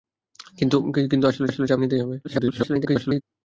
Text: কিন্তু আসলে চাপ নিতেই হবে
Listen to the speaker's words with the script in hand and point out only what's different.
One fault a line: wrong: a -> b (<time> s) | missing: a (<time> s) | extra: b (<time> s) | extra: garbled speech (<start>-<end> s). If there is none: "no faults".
extra: আসলে (1.5 s)
extra: garbled speech (2.2-3.2 s)